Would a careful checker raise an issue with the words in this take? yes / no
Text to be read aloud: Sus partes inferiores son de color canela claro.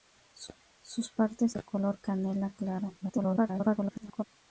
yes